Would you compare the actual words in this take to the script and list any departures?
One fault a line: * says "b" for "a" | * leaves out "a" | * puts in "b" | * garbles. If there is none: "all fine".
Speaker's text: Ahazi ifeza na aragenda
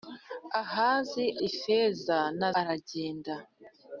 all fine